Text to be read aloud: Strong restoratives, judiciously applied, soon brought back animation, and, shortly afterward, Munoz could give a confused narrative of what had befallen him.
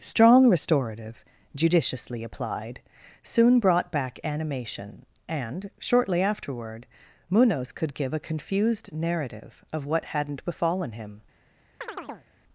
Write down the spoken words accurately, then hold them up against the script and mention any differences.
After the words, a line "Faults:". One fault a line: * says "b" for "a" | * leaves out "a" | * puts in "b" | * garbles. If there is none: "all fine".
Strong restorative, judiciously applied, soon brought back animation, and, shortly afterward, Munoz could give a confused narrative of what hadn't befallen him.
Faults:
* says "restorative" for "restoratives"
* says "hadn't" for "had"